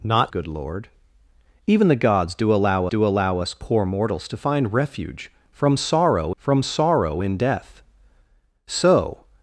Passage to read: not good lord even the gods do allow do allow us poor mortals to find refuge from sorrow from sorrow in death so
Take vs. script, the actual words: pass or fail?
pass